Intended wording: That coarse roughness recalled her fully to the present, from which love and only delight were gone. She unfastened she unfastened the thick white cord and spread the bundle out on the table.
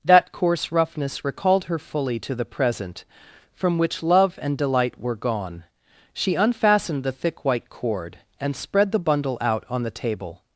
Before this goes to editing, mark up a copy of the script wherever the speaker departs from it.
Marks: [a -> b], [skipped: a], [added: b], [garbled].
That coarse roughness recalled her fully to the present, from which love and [skipped: only] delight were gone. She unfastened [skipped: she unfastened] the thick white cord and spread the bundle out on the table.